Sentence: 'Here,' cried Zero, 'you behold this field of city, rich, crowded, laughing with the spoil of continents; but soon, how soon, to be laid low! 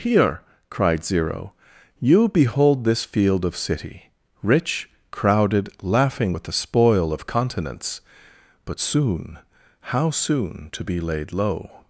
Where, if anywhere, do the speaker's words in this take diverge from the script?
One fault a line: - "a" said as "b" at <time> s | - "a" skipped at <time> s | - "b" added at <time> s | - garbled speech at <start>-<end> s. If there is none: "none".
none